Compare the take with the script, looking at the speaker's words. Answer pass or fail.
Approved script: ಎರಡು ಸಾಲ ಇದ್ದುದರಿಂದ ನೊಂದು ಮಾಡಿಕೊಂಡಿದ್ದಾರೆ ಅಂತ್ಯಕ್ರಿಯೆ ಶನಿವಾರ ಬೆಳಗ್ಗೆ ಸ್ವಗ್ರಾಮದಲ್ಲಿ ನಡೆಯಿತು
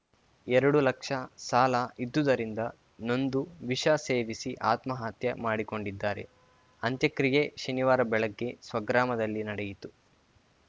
fail